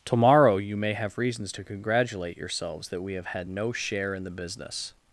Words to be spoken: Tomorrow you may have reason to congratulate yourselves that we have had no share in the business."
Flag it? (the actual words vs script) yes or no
yes